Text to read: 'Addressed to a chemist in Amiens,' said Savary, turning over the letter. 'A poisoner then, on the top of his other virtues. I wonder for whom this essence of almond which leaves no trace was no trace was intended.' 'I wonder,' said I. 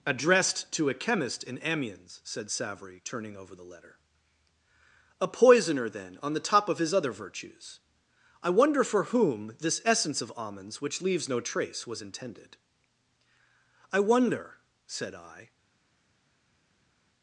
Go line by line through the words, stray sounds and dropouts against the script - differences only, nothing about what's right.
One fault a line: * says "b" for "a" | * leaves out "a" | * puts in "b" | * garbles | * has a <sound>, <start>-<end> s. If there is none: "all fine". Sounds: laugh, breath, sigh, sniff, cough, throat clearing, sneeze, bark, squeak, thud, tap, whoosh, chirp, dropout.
* says "almonds" for "almond"
* leaves out "no trace was"